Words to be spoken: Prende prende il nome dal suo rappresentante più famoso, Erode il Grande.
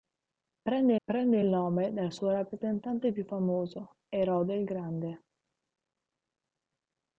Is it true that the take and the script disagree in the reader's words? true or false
false